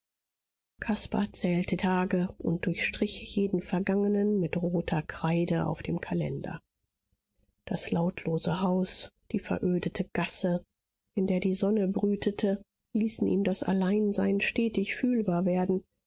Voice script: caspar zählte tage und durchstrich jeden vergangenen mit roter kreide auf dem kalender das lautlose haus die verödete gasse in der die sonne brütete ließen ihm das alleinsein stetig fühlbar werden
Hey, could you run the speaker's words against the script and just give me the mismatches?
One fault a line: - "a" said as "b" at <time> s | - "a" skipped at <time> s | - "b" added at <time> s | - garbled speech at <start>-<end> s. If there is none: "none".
none